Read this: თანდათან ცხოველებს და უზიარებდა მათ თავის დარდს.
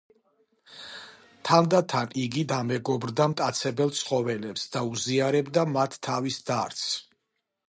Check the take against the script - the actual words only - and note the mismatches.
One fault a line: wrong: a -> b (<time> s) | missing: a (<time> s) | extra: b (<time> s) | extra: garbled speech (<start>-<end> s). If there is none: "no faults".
extra: იგი დამეგობრდა მტაცებელ (2.2 s)